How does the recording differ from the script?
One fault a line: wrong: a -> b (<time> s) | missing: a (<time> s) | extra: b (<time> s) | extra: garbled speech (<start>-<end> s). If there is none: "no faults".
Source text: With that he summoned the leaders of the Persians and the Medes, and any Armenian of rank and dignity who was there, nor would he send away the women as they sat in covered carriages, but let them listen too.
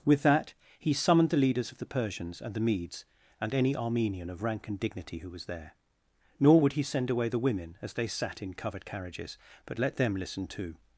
no faults